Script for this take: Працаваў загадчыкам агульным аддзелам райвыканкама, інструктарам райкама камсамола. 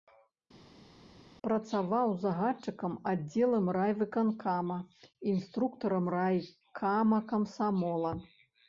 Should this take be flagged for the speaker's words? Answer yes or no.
yes